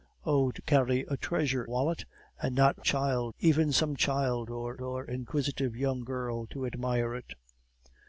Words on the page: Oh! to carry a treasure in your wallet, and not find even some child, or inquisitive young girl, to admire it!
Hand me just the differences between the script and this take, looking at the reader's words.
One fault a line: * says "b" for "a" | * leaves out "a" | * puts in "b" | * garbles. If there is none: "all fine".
* leaves out "in your"
* says "child" for "find"
* puts in "or"